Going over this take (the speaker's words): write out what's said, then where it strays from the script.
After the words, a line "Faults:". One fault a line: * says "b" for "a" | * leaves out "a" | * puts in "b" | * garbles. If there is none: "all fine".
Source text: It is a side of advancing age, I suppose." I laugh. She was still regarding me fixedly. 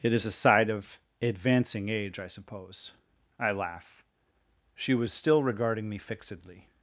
It is a side of advancing age, I suppose." I laugh. She was still regarding me fixedly.
Faults:
all fine